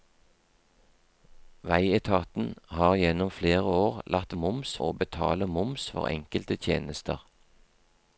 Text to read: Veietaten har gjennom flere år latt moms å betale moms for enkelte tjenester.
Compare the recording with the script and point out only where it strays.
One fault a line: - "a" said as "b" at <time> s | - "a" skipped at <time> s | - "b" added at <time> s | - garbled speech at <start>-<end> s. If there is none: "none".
none